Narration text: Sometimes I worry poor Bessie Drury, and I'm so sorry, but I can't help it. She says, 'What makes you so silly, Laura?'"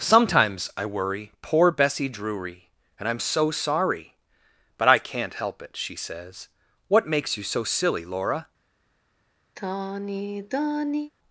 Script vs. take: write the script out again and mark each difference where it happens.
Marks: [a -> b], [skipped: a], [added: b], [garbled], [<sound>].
Sometimes I worry poor Bessie Drury, and I'm so sorry, but I can't help it. She says, 'What makes you so silly, Laura?'" [sigh]